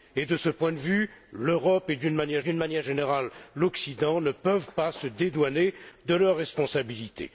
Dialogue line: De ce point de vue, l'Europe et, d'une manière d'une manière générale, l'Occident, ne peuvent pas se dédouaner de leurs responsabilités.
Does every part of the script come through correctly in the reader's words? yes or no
yes